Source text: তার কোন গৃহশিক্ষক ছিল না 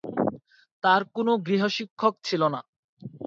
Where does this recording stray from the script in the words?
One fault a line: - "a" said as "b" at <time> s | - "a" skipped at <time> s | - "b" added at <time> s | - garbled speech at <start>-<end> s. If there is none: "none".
none